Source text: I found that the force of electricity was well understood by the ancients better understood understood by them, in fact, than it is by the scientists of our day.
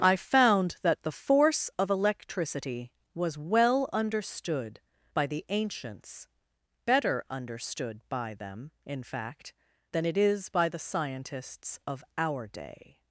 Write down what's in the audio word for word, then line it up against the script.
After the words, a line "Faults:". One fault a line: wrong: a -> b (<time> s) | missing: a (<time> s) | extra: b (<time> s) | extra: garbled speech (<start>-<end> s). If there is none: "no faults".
I found that the force of electricity was well understood by the ancients better understood by them, in fact, than it is by the scientists of our day.
Faults:
missing: understood (8.0 s)